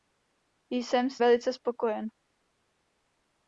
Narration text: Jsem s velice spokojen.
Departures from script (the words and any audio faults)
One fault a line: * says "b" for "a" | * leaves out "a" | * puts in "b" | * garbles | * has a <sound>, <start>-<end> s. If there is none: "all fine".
all fine